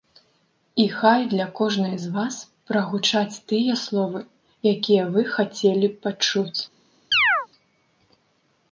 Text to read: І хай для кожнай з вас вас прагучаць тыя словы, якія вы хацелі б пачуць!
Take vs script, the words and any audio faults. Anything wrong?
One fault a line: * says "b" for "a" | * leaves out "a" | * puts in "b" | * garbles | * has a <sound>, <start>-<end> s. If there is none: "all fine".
* leaves out "вас"
* has a chirp, 7.1-7.5 s